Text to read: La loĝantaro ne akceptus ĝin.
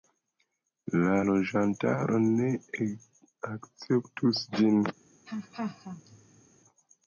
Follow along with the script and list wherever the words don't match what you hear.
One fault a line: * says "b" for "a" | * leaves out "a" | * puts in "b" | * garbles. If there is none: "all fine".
all fine